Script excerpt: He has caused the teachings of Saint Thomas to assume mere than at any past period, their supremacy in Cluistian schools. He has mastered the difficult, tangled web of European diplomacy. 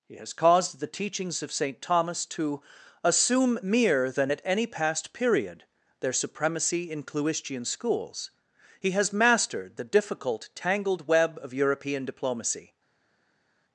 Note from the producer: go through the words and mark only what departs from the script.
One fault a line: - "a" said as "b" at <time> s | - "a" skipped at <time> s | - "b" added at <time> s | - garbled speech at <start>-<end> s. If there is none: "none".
none